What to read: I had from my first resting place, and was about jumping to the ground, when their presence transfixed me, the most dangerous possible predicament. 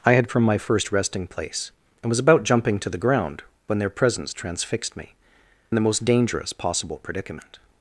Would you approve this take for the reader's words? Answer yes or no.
yes